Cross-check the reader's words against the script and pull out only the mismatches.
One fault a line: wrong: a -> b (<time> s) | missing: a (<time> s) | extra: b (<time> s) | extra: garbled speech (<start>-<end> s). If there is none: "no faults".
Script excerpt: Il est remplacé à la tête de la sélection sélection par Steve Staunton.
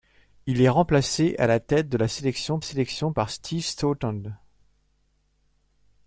no faults